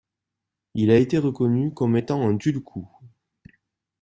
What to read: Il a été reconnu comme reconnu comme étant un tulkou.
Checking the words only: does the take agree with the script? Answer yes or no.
no